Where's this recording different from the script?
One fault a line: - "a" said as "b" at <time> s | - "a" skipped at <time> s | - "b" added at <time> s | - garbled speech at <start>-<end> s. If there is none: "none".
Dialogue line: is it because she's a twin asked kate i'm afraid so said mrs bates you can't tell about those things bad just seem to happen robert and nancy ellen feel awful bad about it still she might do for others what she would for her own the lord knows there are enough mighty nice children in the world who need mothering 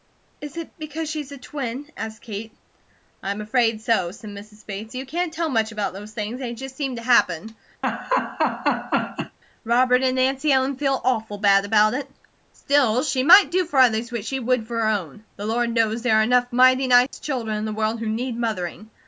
- "much" added at 5.5 s
- "bad" said as "they" at 6.4 s